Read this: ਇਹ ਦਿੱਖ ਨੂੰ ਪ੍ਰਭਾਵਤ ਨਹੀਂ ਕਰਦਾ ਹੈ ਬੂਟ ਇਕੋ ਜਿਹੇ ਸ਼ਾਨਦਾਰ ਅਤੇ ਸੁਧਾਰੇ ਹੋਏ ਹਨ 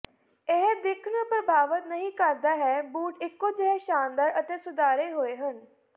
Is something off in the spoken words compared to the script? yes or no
no